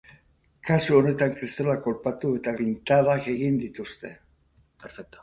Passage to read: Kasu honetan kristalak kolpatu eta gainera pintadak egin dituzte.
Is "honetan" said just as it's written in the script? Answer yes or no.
yes